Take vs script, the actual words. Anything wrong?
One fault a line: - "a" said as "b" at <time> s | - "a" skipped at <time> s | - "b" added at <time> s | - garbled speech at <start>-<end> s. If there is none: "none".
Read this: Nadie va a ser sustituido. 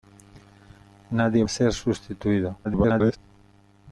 - "va" skipped at 1.4 s
- garbled speech at 2.6-3.2 s